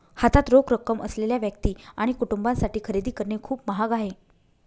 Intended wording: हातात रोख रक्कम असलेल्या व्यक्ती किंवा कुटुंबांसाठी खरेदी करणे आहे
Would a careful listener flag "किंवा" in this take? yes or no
yes